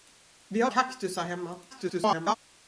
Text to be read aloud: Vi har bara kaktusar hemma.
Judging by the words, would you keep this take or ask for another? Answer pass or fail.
fail